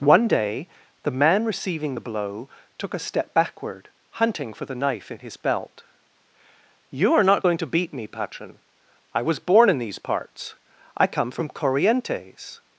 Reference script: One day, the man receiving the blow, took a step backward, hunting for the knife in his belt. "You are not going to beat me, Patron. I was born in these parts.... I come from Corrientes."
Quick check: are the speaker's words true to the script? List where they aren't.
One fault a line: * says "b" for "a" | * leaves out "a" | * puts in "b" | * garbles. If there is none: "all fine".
all fine